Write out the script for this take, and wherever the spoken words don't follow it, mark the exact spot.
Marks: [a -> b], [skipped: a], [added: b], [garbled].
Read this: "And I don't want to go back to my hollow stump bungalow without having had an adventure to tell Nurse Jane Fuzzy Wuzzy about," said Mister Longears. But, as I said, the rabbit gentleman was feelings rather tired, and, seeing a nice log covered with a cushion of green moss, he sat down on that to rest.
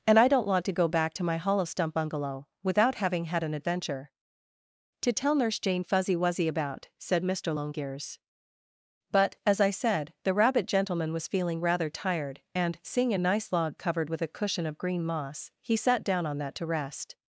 "And I don't want to go back to my hollow stump bungalow without having had an adventure to tell Nurse Jane Fuzzy Wuzzy about," said Mister Longears. But, as I said, the rabbit gentleman was [feelings -> feeling] rather tired, and, seeing a nice log covered with a cushion of green moss, he sat down on that to rest.